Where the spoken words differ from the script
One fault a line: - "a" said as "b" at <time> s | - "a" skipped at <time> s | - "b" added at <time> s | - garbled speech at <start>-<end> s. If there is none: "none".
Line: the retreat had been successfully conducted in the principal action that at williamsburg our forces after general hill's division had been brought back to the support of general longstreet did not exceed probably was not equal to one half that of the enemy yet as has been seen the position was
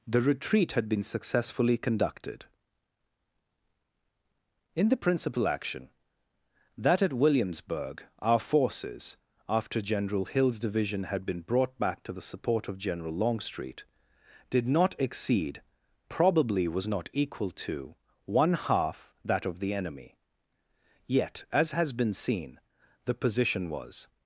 none